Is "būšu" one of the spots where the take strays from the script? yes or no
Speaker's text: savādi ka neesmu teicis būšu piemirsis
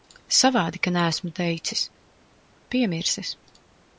yes